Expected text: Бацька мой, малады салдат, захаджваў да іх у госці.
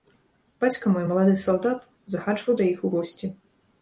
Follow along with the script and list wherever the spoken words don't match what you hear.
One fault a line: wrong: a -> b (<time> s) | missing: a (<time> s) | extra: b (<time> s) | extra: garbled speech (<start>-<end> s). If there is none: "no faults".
no faults